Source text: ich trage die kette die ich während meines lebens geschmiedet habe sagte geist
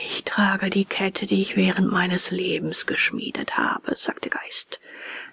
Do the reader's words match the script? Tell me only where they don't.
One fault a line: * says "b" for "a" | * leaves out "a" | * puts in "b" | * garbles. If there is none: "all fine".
all fine